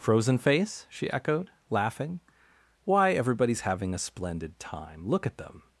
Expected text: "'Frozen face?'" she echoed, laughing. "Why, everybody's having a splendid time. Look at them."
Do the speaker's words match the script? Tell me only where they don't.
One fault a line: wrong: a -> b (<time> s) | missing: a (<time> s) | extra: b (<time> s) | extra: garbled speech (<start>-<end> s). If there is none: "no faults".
no faults